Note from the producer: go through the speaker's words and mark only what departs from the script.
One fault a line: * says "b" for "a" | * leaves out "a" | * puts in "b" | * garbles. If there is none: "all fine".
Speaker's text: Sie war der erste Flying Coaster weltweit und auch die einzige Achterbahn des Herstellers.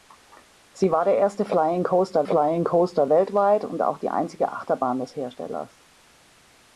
* puts in "Flying Coaster"